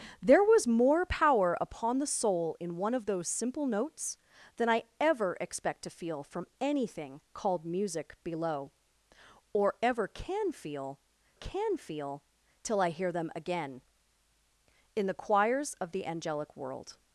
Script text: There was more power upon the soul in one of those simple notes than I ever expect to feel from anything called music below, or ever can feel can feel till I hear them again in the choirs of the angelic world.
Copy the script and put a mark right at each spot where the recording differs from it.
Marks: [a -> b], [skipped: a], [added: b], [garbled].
There was more power upon the soul in one of those simple notes than I ever expect to feel from anything called music below, or ever can feel can feel till I hear them again in the choirs of the angelic world.